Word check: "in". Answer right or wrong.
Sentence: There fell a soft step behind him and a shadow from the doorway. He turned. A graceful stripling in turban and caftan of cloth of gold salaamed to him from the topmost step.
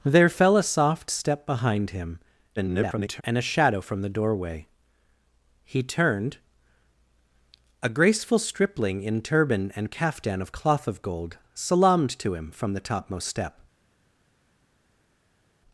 right